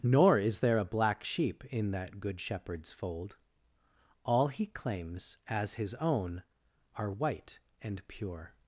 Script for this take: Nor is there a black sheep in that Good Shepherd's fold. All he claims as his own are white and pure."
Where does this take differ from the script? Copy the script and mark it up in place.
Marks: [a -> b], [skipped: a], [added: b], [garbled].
Nor is there a black sheep in that Good Shepherd's fold. All he claims as his own are white and pure."